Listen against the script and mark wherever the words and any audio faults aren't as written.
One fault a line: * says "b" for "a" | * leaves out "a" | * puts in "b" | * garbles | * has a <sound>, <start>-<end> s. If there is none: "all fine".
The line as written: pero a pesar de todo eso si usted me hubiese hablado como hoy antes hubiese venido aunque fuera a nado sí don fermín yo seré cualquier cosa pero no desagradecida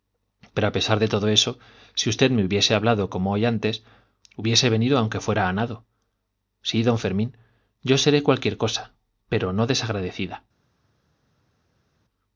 all fine